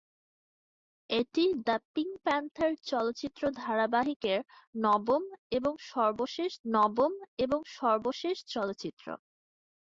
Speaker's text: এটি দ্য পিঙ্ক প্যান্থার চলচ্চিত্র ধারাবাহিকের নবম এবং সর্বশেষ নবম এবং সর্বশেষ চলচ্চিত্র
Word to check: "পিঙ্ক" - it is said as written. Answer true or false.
true